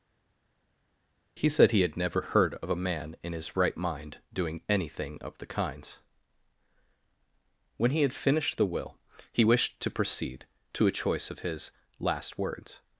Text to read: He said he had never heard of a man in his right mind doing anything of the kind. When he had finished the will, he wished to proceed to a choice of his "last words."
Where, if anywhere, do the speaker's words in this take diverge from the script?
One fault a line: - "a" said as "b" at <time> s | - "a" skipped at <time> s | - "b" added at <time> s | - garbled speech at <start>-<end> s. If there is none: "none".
- "kind" said as "kinds" at 5.5 s